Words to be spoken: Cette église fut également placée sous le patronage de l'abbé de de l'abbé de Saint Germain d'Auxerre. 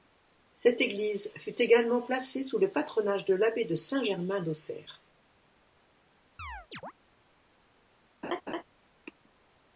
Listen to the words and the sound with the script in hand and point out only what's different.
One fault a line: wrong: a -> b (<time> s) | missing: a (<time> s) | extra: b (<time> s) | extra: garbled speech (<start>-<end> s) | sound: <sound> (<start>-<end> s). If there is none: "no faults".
missing: de l'abbé de (3.8 s)
sound: chirp (6.4-6.9 s)
sound: laugh (8.2-8.6 s)